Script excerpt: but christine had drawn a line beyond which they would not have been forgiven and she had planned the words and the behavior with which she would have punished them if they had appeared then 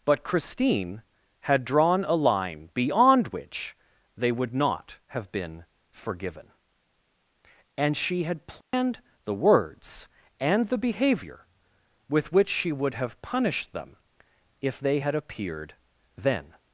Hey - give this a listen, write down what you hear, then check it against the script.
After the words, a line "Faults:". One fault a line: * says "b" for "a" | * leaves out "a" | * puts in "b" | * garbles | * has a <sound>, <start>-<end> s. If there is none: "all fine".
but christine had drawn a line beyond which they would not have been forgiven and she had planned the words and the behavior with which she would have punished them if they had appeared then
Faults:
* has a dropout, 8.6-8.7 s